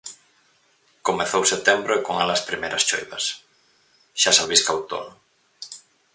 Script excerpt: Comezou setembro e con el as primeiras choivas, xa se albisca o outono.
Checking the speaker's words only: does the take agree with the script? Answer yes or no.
yes